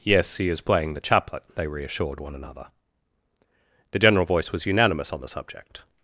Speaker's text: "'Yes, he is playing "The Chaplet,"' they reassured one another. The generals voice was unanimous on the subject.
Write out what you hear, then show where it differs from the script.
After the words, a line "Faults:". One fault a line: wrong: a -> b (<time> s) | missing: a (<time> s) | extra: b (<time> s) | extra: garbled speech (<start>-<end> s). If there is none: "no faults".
"'Yes, he is playing "The Chaplet,"' they reassured one another. The general voice was unanimous on the subject.
Faults:
wrong: generals -> general (4.0 s)